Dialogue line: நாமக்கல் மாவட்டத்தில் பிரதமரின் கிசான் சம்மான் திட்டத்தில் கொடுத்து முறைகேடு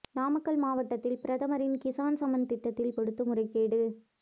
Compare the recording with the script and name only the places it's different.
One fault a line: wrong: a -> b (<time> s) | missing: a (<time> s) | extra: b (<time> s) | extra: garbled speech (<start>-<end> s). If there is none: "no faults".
no faults